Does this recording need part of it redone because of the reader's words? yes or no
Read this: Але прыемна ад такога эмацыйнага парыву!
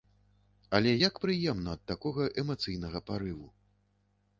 yes